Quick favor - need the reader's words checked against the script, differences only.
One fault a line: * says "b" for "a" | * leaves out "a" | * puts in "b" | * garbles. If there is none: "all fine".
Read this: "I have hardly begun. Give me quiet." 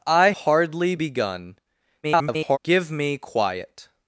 * leaves out "have"
* garbles